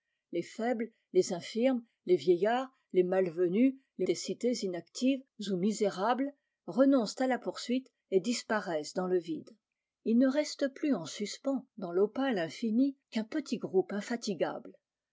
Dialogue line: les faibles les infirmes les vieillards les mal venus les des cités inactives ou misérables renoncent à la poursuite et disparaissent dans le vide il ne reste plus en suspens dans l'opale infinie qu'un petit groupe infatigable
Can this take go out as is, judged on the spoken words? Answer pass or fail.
pass